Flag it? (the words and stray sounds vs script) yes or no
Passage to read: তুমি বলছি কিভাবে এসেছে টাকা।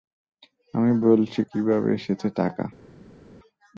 yes